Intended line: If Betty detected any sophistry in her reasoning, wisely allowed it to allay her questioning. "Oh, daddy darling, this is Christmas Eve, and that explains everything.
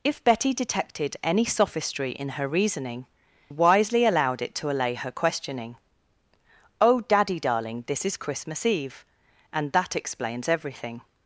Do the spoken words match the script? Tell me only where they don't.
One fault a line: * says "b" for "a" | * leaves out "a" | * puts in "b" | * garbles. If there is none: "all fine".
all fine